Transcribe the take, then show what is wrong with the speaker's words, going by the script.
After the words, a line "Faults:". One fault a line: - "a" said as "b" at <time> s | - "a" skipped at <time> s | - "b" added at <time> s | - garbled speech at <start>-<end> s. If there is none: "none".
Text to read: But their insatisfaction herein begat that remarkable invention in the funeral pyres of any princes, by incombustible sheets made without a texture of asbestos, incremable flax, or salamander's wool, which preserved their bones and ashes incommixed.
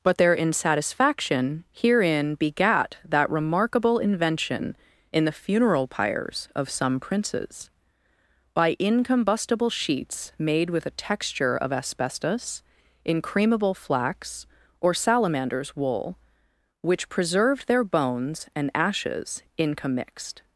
But their insatisfaction herein begat that remarkable invention in the funeral pyres of some princes, by incombustible sheets made with a texture of asbestos, incremable flax, or salamander's wool, which preserved their bones and ashes incommixed.
Faults:
- "any" said as "some" at 6.7 s
- "without" said as "with" at 10.7 s